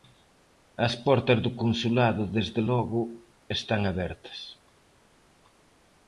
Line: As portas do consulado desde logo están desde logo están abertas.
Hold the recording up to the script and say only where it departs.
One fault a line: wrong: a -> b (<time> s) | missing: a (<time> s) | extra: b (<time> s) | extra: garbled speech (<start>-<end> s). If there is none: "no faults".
missing: desde logo están (3.8 s)